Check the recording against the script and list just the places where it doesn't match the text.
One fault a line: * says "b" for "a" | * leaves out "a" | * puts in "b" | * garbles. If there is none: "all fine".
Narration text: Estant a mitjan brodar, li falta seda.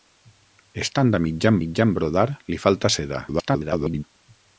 * puts in "mitjan"
* garbles